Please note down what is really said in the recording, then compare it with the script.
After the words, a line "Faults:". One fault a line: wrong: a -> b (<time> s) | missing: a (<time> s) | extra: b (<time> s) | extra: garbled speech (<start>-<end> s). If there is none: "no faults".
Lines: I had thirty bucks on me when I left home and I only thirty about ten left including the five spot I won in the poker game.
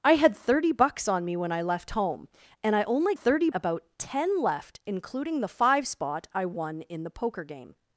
I had thirty bucks on me when I left home and I only thirty about ten left including the five spot I won in the poker game.
Faults:
no faults